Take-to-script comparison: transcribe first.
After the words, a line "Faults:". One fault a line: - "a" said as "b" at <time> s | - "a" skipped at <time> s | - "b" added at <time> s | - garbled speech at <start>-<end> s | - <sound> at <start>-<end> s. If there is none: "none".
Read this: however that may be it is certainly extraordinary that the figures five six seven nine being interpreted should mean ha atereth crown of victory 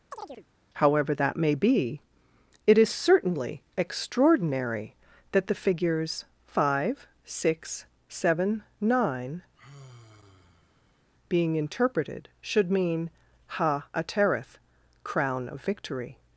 however that may be it is certainly extraordinary that the figures five six seven nine being interpreted should mean ha atereth crown of victory
Faults:
- chirp at 0.1-0.5 s
- sigh at 9.6-11.1 s